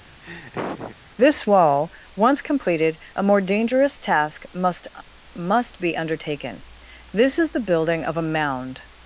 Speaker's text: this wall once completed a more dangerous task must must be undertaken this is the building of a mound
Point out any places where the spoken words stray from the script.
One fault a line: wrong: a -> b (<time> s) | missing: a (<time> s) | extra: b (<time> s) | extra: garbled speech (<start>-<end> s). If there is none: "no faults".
no faults